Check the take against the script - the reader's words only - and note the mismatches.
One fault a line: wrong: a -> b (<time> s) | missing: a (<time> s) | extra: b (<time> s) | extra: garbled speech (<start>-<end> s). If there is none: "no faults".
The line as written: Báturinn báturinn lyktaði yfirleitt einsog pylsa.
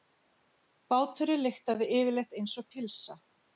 missing: báturinn (1.4 s)